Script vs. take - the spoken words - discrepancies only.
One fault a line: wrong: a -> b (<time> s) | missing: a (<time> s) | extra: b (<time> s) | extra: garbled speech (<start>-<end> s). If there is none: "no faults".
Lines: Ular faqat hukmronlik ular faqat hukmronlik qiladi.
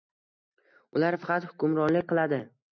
missing: ular faqat hukmronlik (2.1 s)